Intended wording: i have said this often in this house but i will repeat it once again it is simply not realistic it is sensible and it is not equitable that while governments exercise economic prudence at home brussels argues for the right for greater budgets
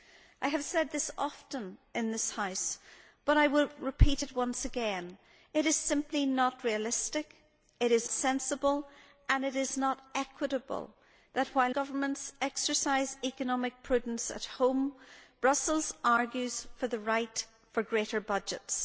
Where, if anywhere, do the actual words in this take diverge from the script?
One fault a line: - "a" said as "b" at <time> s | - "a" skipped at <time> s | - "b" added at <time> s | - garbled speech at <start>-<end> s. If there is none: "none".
none